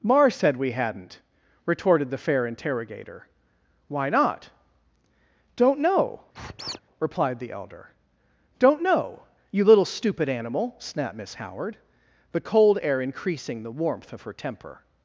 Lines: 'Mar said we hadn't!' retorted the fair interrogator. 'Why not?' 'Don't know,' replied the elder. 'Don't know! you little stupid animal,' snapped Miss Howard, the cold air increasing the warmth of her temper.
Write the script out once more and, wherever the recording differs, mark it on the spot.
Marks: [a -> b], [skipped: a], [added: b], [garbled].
'Mar said we hadn't!' retorted the fair interrogator. 'Why not?' 'Don't know,' replied the elder. 'Don't know! you little stupid animal,' snapped Miss Howard, the cold air increasing the warmth of her temper.